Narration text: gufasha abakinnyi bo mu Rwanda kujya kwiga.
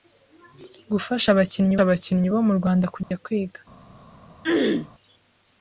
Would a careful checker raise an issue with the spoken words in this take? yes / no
yes